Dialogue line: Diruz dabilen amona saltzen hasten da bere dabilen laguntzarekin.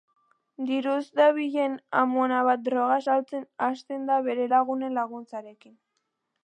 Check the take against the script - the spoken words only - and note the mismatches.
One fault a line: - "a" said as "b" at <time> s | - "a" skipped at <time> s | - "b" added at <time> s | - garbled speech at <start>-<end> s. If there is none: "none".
- "bat droga" added at 2.5 s
- "dabilen" said as "lagunen" at 4.6 s